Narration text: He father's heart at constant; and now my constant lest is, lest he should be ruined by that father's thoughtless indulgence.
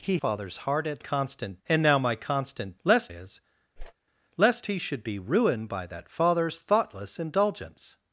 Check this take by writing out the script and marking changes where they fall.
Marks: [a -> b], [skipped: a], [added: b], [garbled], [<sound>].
He father's heart at constant; and now my constant lest is, [whoosh] lest he should be ruined by that father's thoughtless indulgence.